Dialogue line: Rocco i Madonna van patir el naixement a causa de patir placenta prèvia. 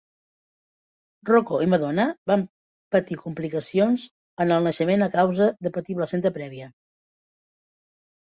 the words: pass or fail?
fail